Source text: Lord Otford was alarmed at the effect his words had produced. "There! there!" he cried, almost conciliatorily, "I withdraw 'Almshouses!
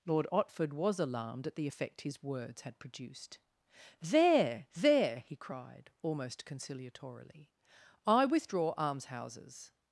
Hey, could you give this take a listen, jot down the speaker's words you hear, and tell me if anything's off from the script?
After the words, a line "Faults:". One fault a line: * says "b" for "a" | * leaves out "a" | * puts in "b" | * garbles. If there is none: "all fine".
Lord Otford was alarmed at the effect his words had produced. "There! there!" he cried, almost conciliatorily, "I withdraw 'Almshouses!
Faults:
all fine